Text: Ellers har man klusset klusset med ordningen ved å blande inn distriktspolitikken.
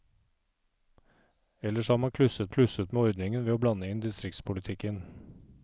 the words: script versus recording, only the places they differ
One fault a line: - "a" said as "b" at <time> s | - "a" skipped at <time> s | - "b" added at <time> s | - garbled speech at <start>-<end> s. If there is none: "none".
none